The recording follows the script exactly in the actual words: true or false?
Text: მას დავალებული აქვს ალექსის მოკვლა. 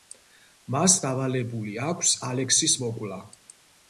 true